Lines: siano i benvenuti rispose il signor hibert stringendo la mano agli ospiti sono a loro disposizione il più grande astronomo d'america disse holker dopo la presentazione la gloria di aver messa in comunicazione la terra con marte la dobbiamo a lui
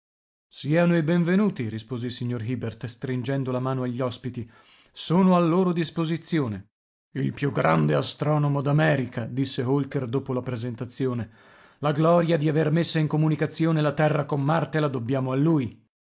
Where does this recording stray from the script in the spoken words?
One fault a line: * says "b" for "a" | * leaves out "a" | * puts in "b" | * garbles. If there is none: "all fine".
all fine